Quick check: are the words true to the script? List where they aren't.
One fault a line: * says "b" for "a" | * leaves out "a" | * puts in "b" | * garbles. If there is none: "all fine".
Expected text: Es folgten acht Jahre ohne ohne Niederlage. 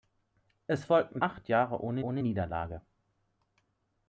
all fine